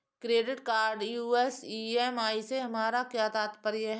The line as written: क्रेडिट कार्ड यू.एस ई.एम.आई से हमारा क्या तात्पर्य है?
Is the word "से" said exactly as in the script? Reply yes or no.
yes